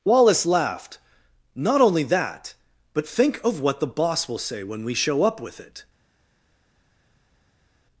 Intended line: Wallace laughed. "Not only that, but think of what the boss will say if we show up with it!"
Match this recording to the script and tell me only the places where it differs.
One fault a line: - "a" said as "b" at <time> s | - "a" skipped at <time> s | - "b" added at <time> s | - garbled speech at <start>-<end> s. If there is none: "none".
- "if" said as "when" at 4.6 s